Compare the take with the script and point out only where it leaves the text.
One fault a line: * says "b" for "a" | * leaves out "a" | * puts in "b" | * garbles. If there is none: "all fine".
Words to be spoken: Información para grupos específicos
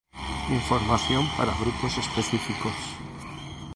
all fine